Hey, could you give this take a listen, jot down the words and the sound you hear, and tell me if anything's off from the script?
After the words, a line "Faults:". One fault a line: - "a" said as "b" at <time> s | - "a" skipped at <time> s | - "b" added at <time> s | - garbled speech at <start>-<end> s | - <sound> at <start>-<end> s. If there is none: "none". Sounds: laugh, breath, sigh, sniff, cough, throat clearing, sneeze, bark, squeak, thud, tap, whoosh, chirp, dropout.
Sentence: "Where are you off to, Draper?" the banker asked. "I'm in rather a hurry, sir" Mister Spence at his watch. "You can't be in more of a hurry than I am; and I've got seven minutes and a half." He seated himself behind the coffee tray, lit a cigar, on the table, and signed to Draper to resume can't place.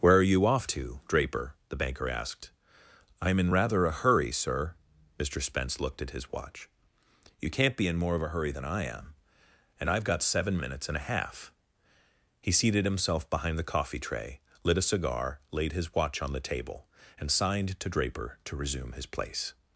"Where are you off to, Draper?" the banker asked. "I'm in rather a hurry, sir" Mister Spence looked at his watch. "You can't be in more of a hurry than I am; and I've got seven minutes and a half." He seated himself behind the coffee tray, lit a cigar, laid his watch on the table, and signed to Draper to resume his place.
Faults:
- "looked" added at 5.8 s
- "laid his watch" added at 15.5 s
- "can't" said as "his" at 18.9 s